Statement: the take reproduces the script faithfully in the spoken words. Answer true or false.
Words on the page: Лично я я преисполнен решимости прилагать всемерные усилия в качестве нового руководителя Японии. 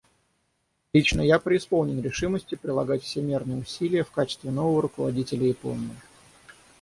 false